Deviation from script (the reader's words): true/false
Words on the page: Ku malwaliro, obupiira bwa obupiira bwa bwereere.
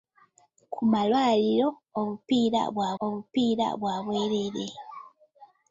false